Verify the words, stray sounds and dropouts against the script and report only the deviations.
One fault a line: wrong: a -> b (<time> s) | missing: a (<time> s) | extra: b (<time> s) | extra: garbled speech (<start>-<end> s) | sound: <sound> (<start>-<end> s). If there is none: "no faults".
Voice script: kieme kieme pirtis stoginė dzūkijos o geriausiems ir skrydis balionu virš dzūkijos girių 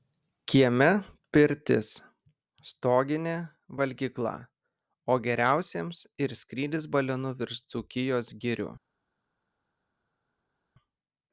missing: kieme (0.9 s)
wrong: dzūkijos -> valgykla (3.8 s)